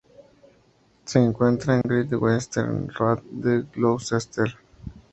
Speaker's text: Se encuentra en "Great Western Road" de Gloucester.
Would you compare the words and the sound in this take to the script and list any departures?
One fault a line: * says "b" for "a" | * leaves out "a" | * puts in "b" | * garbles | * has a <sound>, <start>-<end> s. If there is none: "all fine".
* has a dropout, 1.8-1.8 s